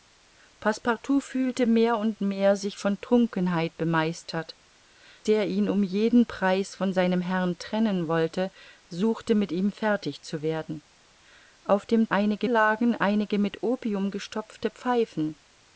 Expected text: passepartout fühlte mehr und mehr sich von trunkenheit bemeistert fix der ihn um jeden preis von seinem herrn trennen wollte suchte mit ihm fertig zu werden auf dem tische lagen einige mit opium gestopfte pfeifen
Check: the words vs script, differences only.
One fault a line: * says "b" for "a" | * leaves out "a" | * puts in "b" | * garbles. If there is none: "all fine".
* leaves out "fix"
* says "einige" for "tische"